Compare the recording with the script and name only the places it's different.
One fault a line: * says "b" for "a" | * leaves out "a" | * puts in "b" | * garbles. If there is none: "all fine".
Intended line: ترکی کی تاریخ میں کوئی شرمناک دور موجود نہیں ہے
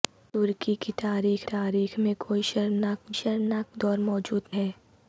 * puts in "تاریخ"
* puts in "شرمناک"
* leaves out "نہیں"